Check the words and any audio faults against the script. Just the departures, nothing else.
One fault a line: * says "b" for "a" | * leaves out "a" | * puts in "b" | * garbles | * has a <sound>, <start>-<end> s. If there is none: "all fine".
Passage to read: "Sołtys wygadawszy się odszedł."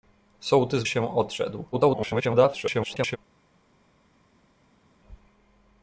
* leaves out "wygadawszy"
* garbles